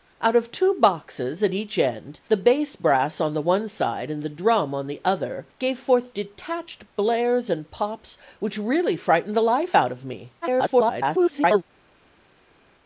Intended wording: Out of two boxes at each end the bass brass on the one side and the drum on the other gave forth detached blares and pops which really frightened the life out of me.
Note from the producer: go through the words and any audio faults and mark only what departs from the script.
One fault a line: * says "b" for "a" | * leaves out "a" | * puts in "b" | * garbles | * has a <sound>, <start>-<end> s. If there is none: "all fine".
* garbles